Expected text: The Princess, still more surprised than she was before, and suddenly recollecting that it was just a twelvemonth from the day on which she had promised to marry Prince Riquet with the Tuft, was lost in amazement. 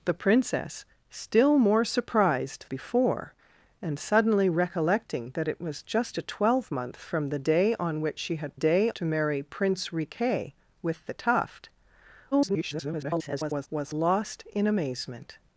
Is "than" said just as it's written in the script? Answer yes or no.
no